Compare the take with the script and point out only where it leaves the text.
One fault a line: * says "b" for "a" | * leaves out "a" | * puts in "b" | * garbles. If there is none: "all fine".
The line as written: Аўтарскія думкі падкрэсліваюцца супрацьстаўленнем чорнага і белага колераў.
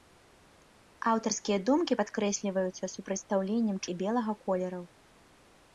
* leaves out "чорнага"